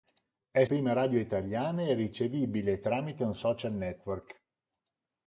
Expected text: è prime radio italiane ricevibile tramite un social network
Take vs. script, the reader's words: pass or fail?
pass